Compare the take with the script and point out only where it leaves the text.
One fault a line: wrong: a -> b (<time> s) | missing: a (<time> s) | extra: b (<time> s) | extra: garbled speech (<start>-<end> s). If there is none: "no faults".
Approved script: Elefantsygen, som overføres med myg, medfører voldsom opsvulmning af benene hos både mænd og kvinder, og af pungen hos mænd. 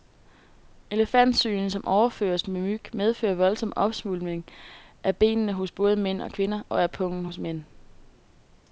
no faults